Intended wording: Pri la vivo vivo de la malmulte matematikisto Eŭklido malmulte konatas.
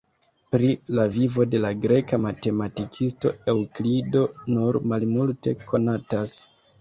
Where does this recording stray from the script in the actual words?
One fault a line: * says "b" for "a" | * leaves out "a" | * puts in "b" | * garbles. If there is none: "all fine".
* leaves out "vivo"
* says "greka" for "malmulte"
* puts in "nur"